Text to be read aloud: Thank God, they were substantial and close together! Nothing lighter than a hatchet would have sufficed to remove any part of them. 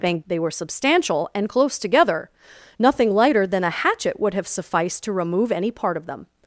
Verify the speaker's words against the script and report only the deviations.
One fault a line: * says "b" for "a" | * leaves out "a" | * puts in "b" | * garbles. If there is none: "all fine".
* leaves out "God"